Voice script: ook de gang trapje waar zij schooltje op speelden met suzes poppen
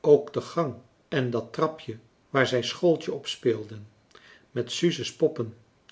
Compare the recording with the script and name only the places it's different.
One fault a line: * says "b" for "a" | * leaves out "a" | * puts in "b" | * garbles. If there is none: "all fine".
* puts in "en dat"